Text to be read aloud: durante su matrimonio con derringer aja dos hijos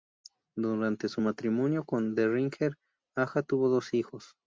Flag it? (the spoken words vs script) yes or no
yes